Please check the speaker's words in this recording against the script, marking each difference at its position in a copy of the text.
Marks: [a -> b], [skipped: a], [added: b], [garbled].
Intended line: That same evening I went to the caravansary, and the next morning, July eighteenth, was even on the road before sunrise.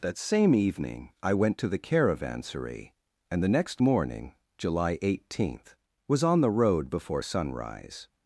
That same evening I went to the caravansary, and the next morning, July eighteenth, was [skipped: even] on the road before sunrise.